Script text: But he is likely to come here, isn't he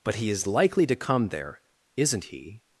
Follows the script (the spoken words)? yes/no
no